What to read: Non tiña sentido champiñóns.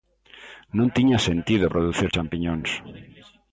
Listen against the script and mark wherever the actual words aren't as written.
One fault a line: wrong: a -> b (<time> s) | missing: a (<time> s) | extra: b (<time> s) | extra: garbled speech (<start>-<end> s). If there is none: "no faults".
extra: producir (1.7 s)